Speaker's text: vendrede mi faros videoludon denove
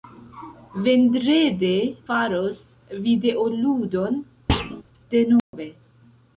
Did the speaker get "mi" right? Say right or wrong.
wrong